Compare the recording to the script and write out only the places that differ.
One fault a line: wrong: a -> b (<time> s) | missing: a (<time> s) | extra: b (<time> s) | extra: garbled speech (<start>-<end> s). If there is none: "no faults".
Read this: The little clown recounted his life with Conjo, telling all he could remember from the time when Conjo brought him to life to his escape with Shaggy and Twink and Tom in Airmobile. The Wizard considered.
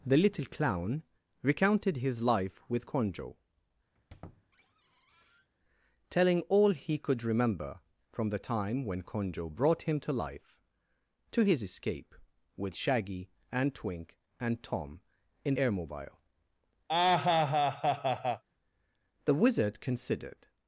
no faults